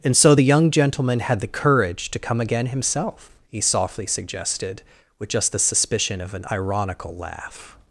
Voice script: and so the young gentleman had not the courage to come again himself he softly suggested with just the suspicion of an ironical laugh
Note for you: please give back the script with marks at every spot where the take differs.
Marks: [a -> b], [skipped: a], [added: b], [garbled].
and so the young gentleman had [skipped: not] the courage to come again himself he softly suggested with just the suspicion of an ironical laugh